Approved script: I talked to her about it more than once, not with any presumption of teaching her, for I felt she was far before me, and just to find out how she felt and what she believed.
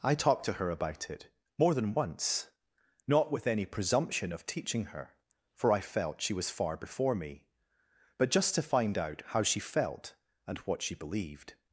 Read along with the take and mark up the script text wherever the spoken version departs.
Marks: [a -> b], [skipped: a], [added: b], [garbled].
I talked to her about it more than once, not with any presumption of teaching her, for I felt she was far before me, [and -> but] just to find out how she felt and what she believed.